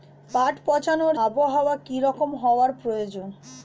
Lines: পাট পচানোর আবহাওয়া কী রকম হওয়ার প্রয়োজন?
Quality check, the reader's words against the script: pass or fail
pass